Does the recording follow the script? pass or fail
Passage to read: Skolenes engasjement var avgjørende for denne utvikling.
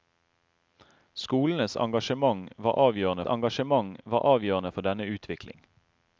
fail